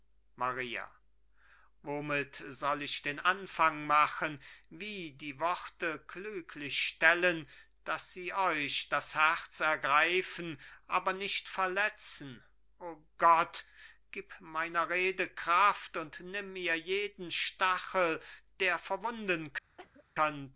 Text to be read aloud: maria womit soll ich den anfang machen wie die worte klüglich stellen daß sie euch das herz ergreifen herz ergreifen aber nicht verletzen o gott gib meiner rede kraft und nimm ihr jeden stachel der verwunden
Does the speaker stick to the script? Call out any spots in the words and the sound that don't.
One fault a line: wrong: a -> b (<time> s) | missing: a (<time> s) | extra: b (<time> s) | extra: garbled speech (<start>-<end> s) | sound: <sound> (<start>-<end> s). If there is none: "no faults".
missing: herz ergreifen (10.6 s)
sound: cough (19.8-20.0 s)